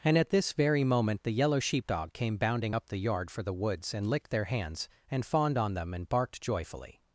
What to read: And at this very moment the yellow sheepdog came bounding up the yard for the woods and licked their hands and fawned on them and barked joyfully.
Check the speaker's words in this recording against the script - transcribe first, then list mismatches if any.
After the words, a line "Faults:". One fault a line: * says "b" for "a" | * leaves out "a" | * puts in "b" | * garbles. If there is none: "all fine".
And at this very moment the yellow sheepdog came bounding up the yard for the woods and licked their hands and fawned on them and barked joyfully.
Faults:
all fine